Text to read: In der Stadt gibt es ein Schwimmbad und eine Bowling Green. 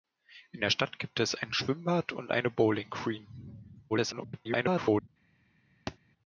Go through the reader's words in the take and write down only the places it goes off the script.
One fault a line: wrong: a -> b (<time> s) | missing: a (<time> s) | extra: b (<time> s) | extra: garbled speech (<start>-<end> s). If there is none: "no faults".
extra: garbled speech (3.9-5.1 s)